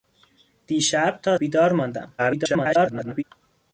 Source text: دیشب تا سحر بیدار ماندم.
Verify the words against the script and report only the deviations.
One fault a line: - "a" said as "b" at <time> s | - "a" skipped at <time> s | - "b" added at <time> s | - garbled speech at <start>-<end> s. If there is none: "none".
- "سحر" skipped at 1.4 s
- garbled speech at 2.2-3.2 s